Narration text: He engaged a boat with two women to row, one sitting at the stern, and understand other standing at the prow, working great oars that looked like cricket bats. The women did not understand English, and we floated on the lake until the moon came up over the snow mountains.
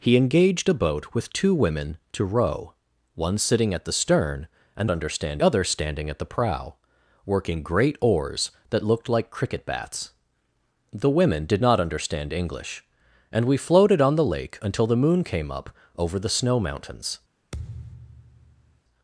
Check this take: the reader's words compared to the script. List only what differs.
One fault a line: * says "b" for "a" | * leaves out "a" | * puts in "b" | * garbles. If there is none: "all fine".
all fine